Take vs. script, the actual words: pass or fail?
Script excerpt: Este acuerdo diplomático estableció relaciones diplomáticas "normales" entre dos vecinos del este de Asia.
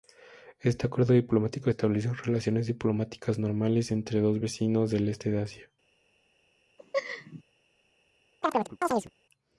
pass